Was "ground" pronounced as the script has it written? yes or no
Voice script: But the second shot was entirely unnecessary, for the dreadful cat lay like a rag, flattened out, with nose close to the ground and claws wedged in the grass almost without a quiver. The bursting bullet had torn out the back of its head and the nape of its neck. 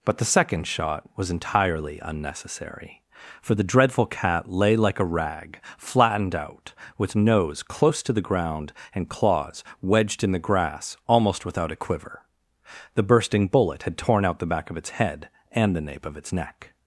yes